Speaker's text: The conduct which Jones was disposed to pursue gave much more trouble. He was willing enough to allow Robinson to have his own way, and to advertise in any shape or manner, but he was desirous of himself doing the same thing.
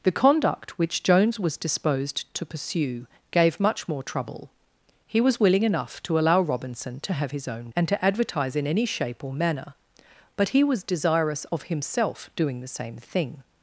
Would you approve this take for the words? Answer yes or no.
no